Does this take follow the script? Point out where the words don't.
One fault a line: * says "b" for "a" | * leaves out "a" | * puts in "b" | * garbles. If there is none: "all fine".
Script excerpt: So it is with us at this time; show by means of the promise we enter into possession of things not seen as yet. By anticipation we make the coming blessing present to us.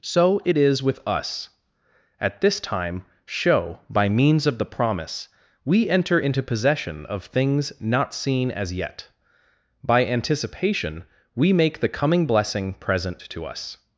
all fine